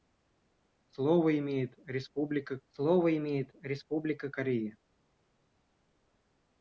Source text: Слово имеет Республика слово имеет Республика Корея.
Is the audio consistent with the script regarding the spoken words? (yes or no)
yes